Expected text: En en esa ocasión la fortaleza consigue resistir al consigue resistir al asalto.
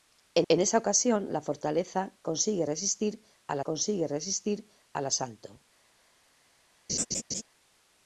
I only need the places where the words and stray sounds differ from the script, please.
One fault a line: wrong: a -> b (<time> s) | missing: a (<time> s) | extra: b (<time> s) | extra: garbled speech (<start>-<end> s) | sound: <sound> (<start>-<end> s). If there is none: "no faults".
sound: laugh (6.9-7.4 s)